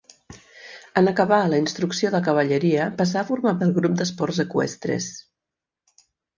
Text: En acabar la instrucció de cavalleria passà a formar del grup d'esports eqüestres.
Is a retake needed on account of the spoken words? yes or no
no